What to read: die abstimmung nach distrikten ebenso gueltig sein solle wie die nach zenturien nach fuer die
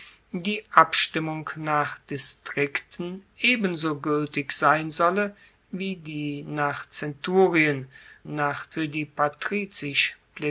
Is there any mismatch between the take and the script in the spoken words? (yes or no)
no